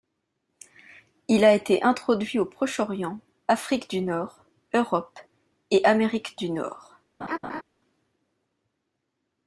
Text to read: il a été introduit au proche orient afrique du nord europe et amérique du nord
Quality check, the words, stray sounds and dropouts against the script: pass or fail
fail